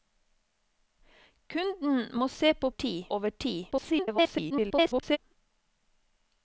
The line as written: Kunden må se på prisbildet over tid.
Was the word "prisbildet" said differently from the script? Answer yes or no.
yes